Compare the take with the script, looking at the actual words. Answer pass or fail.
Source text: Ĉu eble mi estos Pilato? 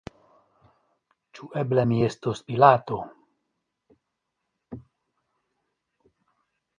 pass